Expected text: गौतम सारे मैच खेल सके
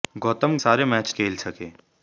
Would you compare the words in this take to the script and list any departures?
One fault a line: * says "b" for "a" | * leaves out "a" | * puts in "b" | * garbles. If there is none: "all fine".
all fine